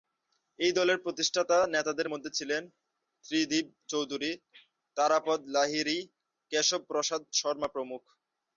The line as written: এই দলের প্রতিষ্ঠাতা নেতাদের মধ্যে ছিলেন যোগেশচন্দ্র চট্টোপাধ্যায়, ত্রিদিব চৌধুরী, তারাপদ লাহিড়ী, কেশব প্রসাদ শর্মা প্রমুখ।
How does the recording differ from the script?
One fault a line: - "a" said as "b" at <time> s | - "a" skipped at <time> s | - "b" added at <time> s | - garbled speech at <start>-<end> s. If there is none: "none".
- "যোগেশচন্দ্র চট্টোপাধ্যায়" skipped at 2.6 s